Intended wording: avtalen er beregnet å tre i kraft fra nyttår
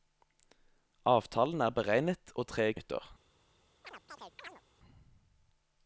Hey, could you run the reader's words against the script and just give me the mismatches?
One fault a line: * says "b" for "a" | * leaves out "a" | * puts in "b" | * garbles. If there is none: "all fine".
* leaves out "kraft fra"